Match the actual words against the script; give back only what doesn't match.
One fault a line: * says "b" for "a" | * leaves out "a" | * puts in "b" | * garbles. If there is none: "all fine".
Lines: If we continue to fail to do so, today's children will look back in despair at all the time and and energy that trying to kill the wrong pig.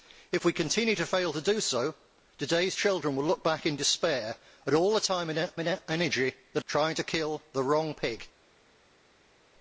all fine